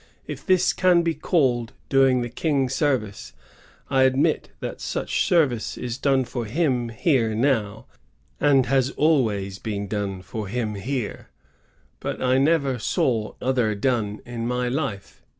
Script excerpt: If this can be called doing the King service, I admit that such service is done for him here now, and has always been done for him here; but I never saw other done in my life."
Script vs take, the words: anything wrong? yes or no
no